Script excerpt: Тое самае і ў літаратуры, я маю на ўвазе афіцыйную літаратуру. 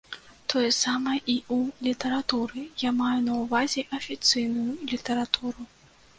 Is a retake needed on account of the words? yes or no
no